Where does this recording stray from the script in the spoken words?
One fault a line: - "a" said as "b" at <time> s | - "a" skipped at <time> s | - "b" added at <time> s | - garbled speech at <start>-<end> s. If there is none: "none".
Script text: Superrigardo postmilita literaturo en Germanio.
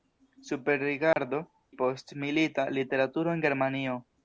none